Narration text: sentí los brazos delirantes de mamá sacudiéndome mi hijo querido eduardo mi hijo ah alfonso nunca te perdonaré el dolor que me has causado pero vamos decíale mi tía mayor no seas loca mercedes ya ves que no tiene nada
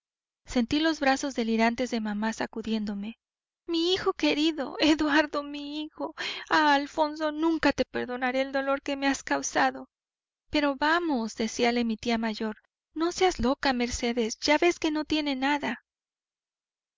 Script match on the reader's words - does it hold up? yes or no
yes